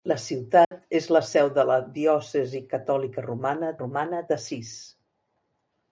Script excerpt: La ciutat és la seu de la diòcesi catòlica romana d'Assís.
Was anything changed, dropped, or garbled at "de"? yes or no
no